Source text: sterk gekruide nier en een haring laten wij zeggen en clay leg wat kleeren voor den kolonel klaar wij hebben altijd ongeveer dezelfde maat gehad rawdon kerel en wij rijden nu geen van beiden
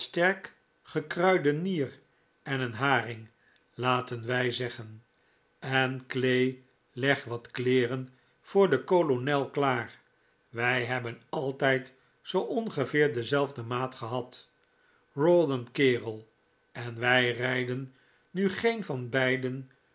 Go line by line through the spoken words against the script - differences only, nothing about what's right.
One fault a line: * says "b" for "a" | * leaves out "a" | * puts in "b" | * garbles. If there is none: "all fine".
* puts in "zoo"